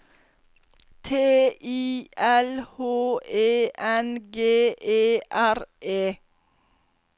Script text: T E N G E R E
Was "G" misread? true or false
false